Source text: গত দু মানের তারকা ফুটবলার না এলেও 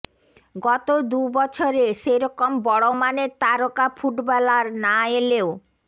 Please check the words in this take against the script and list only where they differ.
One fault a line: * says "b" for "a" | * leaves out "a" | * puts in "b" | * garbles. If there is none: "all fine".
* puts in "বছরে সেরকম বড়"